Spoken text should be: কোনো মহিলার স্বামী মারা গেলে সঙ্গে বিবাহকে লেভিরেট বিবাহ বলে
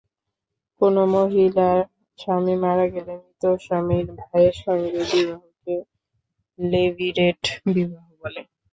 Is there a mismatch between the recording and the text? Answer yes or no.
yes